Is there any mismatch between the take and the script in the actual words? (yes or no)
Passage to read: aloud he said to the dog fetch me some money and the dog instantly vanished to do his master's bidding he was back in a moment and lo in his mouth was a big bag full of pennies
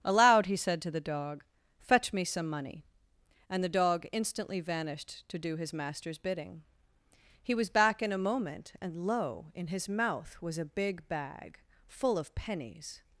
no